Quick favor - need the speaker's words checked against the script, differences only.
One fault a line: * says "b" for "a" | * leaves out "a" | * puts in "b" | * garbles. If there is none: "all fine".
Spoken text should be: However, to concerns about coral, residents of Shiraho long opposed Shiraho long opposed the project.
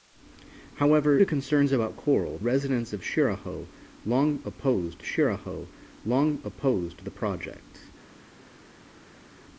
all fine